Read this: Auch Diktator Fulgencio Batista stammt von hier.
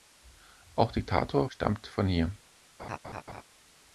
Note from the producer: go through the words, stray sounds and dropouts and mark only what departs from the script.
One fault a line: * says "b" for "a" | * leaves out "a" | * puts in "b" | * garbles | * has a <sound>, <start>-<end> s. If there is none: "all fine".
* leaves out "Fulgencio Batista"
* has a laugh, 2.8-3.4 s